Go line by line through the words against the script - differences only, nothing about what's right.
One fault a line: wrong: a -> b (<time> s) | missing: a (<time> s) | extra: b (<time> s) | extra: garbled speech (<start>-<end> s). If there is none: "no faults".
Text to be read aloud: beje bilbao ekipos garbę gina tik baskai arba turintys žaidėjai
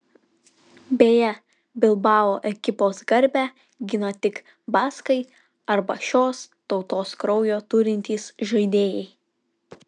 extra: šios tautos kraujo (6.1 s)